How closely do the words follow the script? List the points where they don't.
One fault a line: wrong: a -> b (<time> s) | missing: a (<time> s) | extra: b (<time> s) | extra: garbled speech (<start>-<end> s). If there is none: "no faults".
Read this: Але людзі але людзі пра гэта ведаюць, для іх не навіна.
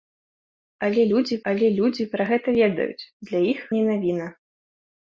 no faults